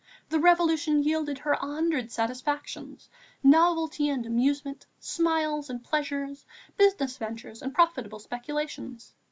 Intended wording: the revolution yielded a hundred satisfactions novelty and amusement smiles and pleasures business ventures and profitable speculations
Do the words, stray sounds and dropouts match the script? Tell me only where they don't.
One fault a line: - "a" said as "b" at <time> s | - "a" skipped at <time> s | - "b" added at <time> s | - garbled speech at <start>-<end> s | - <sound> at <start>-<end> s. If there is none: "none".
- "her" added at 1.4 s